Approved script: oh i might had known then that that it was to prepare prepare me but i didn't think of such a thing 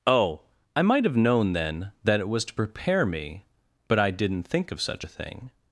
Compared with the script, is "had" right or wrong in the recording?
wrong